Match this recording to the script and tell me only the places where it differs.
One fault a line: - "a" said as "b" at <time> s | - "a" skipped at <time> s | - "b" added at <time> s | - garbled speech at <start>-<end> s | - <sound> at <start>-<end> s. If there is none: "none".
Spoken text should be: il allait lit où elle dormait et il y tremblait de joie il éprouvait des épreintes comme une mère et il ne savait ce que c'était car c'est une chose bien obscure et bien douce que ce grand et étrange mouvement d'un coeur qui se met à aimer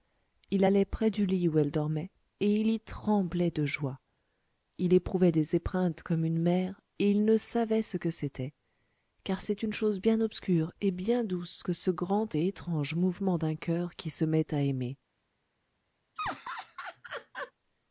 - "près du" added at 0.8 s
- laugh at 16.2-17.5 s